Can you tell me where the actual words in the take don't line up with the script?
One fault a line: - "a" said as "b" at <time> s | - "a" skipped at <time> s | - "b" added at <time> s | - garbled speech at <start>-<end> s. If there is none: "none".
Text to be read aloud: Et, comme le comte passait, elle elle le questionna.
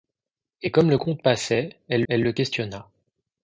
none